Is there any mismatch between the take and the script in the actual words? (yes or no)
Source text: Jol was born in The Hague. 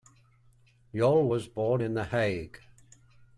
no